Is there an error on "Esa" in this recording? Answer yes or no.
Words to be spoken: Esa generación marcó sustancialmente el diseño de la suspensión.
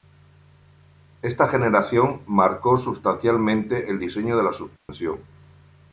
yes